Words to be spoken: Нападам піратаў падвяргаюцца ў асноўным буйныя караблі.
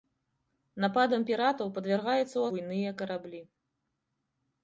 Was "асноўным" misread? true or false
true